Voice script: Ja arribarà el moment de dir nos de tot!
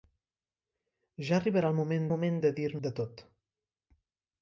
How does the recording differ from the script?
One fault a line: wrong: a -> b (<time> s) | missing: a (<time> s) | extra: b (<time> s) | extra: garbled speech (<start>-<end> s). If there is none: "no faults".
extra: moment (2.1 s)
missing: nos (2.7 s)